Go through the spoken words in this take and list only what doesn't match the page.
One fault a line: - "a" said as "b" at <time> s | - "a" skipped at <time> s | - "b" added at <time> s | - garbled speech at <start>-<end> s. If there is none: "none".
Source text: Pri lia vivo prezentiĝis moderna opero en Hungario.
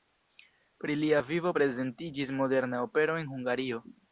none